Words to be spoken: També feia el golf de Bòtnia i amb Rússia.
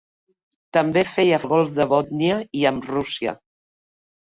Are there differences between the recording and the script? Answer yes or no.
no